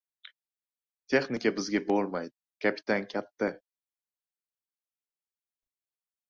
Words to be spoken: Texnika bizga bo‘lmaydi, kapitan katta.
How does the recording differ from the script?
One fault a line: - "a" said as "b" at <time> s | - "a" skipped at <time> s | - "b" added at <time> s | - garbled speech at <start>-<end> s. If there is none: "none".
none